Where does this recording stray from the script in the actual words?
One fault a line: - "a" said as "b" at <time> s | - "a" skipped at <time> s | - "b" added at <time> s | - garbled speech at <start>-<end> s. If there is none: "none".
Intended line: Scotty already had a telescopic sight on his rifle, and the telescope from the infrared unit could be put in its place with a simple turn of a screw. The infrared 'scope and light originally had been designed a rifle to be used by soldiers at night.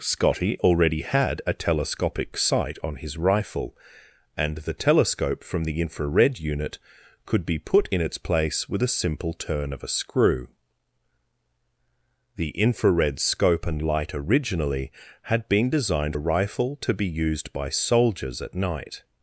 none